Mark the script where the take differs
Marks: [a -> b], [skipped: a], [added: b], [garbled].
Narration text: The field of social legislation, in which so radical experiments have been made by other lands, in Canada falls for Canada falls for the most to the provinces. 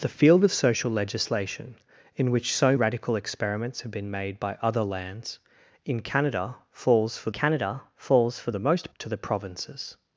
The field of social legislation, in which so radical experiments have been made by other lands, in Canada falls for Canada falls for the most to the provinces.